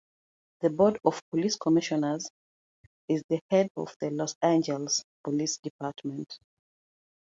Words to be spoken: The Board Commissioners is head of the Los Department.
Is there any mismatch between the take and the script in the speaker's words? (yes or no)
yes